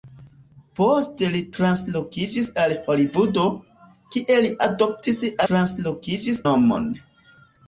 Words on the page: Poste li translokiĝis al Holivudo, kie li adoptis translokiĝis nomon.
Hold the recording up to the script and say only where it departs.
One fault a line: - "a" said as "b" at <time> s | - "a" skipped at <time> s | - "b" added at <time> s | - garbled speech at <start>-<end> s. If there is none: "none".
none